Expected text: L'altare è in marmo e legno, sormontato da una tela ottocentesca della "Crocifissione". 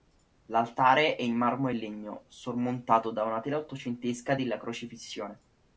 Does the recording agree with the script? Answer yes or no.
yes